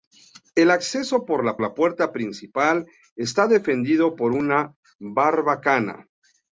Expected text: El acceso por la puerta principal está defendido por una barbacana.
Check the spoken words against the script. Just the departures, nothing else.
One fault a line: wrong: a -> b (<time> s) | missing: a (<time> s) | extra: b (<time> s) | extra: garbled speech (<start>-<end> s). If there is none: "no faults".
extra: la (1.6 s)